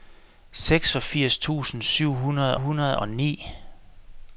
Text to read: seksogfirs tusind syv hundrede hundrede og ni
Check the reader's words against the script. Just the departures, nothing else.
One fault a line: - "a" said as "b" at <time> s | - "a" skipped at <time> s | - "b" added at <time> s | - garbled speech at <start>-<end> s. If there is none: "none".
none